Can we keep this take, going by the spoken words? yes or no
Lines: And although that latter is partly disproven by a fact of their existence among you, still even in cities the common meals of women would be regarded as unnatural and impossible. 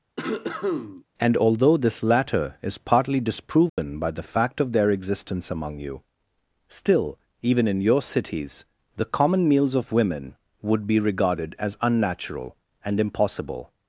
no